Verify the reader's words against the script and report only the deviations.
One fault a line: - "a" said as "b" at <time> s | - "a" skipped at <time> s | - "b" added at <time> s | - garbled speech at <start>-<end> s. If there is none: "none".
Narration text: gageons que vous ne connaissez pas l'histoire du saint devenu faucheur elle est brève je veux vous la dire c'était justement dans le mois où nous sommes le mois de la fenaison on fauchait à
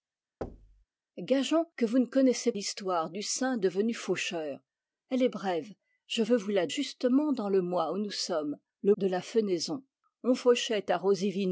- "pas" skipped at 2.5 s
- "dire c'était" skipped at 6.7 s
- "mois" skipped at 9.0 s